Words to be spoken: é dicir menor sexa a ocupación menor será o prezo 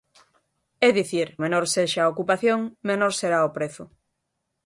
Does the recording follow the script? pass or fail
pass